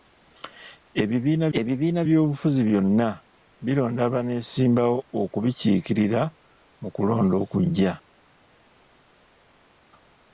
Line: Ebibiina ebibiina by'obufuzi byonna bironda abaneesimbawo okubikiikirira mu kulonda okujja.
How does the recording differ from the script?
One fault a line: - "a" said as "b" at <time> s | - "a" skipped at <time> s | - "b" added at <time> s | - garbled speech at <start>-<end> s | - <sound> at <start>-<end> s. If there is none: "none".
none